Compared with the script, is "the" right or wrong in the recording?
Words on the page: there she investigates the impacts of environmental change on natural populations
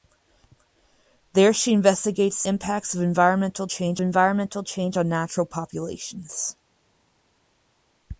wrong